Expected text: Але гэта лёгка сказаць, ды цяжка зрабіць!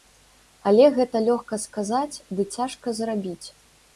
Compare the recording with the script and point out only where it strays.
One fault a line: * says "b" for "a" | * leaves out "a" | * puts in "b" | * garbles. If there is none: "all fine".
all fine